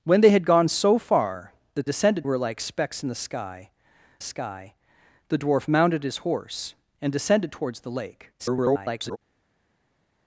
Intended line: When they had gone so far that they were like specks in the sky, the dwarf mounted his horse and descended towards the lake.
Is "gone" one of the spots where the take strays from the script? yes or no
no